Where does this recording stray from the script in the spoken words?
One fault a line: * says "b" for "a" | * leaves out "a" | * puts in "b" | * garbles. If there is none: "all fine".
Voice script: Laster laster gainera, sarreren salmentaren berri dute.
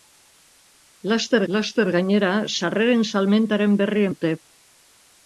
all fine